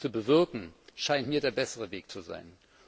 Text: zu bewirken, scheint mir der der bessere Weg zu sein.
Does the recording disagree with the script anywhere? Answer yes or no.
yes